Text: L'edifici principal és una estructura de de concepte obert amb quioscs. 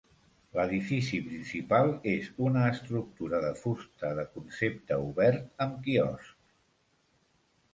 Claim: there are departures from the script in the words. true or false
true